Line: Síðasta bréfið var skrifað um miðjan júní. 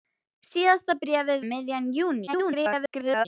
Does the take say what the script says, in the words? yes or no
no